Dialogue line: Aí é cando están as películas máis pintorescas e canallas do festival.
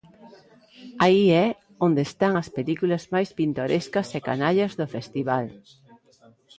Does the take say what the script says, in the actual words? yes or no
no